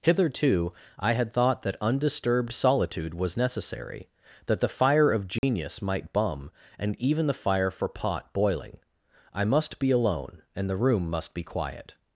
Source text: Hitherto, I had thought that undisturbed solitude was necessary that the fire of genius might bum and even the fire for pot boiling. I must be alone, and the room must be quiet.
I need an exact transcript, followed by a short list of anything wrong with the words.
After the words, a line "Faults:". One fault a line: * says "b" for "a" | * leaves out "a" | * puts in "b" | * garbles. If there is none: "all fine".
Hitherto, I had thought that undisturbed solitude was necessary that the fire of genius might bum and even the fire for pot boiling. I must be alone, and the room must be quiet.
Faults:
all fine